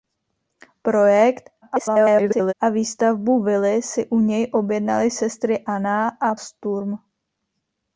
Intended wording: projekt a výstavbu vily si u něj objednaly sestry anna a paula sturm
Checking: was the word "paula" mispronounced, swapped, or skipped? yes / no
yes